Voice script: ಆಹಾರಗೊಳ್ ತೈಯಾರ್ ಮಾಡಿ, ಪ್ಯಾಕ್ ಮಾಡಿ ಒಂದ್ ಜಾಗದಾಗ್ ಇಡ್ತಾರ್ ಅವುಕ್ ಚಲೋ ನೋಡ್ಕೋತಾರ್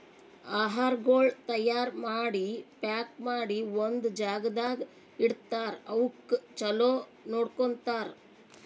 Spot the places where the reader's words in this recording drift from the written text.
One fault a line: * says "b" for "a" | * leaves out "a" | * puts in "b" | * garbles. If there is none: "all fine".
all fine